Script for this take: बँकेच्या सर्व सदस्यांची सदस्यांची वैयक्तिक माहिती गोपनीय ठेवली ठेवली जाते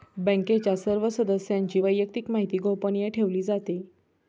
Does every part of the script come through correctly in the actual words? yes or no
no